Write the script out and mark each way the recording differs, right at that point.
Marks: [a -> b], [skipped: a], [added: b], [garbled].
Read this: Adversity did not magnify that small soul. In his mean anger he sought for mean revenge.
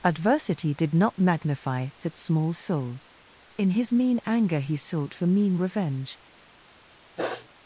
Adversity did not magnify that small soul. In his mean anger he sought for mean revenge.